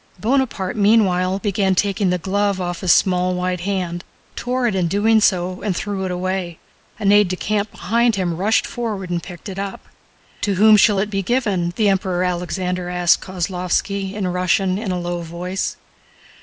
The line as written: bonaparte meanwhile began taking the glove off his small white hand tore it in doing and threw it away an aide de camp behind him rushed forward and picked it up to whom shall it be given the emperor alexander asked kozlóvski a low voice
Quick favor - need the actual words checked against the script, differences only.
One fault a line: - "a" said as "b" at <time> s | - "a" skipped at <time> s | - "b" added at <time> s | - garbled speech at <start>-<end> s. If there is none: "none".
- "so" added at 5.2 s
- "in russian in" added at 14.1 s